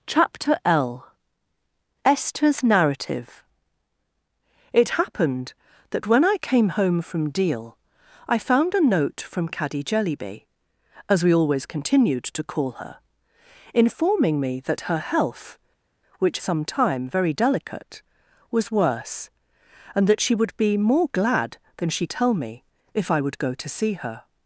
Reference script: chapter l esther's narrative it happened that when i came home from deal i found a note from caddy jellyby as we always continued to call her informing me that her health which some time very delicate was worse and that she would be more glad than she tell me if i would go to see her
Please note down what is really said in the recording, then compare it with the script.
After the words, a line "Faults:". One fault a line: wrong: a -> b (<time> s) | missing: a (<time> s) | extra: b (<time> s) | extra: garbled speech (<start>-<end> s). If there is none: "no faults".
chapter l esther's narrative it happened that when i came home from deal i found a note from caddy jellyby as we always continued to call her informing me that her health which some time very delicate was worse and that she would be more glad than she tell me if i would go to see her
Faults:
no faults